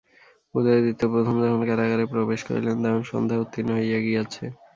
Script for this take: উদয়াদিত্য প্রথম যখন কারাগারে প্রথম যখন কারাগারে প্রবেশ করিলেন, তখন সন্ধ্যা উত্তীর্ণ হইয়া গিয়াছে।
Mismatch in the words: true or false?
true